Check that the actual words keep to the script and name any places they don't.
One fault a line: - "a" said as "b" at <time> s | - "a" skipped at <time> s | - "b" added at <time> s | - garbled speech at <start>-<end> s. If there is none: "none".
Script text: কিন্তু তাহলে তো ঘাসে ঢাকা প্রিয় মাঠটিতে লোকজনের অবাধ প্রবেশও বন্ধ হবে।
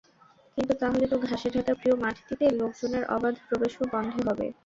none